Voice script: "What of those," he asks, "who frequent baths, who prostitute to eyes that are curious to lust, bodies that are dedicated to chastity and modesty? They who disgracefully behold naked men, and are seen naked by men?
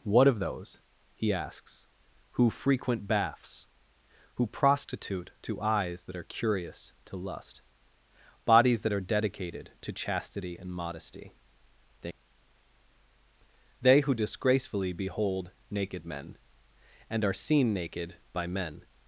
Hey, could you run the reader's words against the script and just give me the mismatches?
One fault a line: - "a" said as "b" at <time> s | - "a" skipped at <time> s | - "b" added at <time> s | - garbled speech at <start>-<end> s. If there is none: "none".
- "They" added at 13.8 s